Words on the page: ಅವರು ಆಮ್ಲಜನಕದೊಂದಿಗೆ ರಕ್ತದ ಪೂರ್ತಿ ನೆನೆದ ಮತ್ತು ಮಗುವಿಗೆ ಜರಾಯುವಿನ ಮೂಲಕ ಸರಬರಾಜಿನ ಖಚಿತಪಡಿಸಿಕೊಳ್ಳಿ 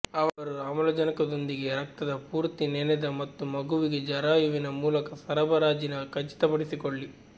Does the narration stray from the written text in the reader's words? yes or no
no